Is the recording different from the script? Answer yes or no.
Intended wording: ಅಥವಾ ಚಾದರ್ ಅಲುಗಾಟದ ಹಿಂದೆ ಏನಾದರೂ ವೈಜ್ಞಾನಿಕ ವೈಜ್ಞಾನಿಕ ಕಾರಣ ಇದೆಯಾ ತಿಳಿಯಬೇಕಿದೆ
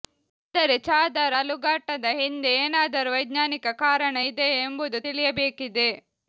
yes